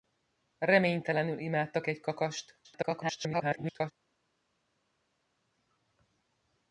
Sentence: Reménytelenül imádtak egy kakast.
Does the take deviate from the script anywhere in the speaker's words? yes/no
yes